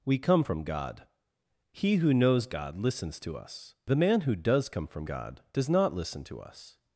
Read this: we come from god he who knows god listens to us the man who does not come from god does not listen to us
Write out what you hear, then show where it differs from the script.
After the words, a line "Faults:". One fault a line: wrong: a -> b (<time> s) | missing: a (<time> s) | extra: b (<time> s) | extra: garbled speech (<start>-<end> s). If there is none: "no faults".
we come from god he who knows god listens to us the man who does come from god does not listen to us
Faults:
missing: not (4.7 s)